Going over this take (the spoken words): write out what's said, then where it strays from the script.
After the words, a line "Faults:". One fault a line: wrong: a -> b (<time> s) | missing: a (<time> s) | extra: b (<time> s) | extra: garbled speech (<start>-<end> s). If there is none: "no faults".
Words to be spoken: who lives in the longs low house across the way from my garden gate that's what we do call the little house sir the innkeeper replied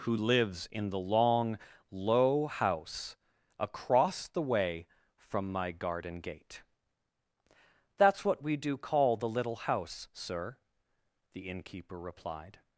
who lives in the long low house across the way from my garden gate that's what we do call the little house sir the innkeeper replied
Faults:
wrong: longs -> long (1.0 s)